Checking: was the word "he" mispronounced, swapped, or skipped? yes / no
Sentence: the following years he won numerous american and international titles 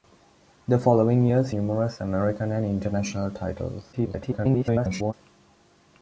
yes